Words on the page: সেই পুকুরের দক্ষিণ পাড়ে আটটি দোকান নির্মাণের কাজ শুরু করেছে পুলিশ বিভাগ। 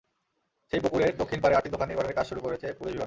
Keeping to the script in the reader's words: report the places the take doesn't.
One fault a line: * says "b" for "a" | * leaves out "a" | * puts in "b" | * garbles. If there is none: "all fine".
all fine